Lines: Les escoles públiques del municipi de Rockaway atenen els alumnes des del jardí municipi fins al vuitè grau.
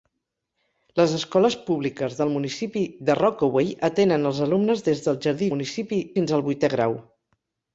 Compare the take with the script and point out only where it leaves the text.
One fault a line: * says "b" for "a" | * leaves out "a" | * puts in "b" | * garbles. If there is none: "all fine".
all fine